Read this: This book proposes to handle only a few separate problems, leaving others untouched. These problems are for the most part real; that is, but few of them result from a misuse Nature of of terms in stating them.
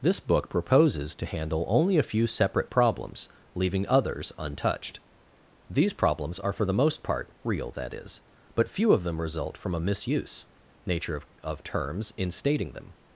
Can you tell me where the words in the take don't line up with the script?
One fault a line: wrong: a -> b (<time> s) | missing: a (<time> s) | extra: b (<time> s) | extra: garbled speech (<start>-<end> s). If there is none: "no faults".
no faults